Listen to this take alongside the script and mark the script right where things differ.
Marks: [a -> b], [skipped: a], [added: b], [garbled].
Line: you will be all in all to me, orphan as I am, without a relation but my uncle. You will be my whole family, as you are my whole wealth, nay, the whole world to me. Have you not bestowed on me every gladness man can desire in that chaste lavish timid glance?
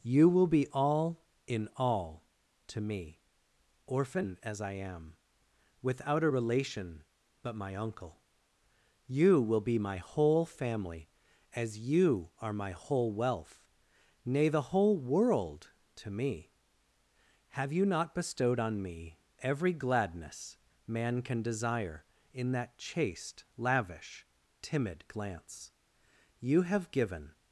you will be all in all to me, orphan as I am, without a relation but my uncle. You will be my whole family, as you are my whole wealth, nay, the whole world to me. Have you not bestowed on me every gladness man can desire in that chaste lavish timid glance? [added: You have given]